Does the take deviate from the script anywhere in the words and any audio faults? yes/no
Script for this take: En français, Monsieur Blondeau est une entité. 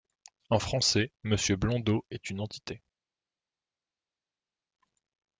no